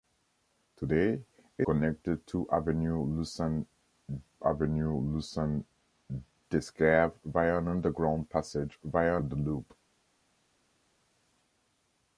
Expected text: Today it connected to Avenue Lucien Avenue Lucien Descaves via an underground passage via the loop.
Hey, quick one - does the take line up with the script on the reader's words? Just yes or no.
yes